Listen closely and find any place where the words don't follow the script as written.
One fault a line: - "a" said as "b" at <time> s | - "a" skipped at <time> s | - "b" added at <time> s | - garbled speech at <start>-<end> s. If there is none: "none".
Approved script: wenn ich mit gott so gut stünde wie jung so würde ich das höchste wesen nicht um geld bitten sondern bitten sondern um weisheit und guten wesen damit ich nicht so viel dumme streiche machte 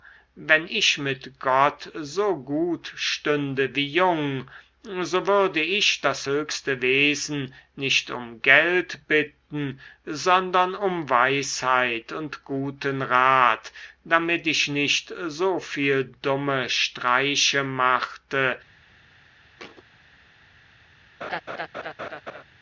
- "bitten sondern" skipped at 10.7 s
- "wesen" said as "rat" at 13.0 s